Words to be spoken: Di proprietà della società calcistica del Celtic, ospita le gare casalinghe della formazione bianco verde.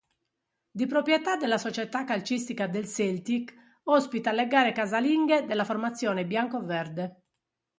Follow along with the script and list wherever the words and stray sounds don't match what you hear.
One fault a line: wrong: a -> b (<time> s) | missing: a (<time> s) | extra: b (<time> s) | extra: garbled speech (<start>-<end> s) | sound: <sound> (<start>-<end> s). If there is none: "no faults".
no faults